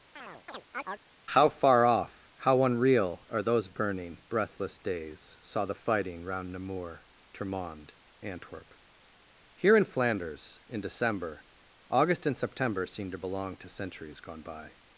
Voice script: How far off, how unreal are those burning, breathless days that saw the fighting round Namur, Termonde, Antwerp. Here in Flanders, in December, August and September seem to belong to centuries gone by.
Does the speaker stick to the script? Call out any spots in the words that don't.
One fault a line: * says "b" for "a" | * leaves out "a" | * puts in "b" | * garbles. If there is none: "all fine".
* leaves out "that"